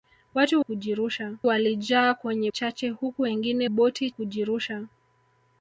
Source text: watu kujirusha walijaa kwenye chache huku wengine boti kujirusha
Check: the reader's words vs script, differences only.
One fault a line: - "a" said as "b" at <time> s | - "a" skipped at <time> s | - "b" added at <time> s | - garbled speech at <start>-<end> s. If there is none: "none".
none